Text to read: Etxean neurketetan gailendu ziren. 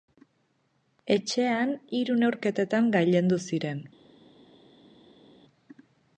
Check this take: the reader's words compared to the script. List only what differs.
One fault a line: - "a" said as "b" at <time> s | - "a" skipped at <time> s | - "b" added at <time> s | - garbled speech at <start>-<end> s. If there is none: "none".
- "hiru" added at 2.0 s